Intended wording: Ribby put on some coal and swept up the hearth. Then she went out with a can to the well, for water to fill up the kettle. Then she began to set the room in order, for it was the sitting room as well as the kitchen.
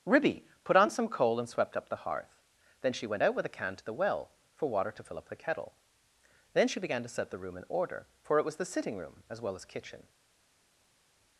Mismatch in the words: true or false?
true